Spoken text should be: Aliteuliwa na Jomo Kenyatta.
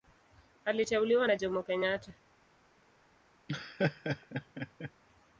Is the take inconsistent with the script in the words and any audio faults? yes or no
yes